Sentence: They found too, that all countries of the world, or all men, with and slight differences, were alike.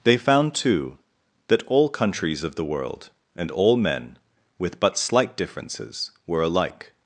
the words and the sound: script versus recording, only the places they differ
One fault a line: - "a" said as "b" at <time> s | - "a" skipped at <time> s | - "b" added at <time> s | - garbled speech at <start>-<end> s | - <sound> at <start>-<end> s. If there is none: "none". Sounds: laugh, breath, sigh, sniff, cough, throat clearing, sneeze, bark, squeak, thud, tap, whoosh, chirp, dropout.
- "or" said as "and" at 3.4 s
- "and" said as "but" at 4.8 s